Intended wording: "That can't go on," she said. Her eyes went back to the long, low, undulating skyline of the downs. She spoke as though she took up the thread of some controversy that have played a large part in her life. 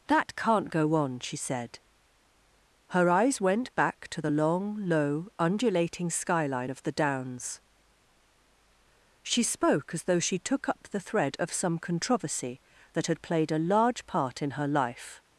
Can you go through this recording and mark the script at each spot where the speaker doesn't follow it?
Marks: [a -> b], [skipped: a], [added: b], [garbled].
"That can't go on," she said. Her eyes went back to the long, low, undulating skyline of the downs. She spoke as though she took up the thread of some controversy that [have -> had] played a large part in her life.